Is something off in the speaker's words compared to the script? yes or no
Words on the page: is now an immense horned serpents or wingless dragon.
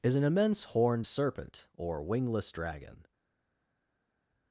yes